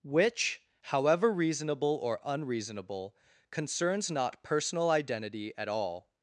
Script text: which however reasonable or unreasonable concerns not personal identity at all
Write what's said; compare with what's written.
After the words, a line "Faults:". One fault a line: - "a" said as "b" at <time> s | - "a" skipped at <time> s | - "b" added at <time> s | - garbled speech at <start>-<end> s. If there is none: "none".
which however reasonable or unreasonable concerns not personal identity at all
Faults:
none